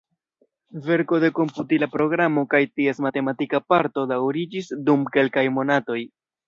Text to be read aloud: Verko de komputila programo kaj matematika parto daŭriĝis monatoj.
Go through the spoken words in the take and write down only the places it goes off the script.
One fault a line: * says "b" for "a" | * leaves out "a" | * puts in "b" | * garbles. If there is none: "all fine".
* puts in "ties"
* puts in "dum kelkaj"